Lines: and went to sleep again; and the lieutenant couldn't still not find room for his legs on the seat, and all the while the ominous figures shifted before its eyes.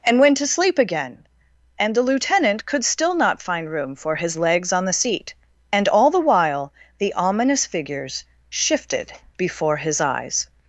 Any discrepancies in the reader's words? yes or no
yes